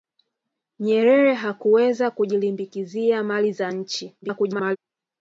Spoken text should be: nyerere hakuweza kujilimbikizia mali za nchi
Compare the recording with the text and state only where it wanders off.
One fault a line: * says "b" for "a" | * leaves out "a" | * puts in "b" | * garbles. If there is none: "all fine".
* garbles